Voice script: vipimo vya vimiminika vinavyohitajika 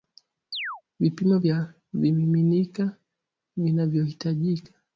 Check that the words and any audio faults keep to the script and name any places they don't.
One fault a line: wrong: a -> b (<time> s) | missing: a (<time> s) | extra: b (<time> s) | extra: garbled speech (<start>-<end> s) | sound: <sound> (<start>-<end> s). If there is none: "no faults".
sound: chirp (0.5-0.8 s)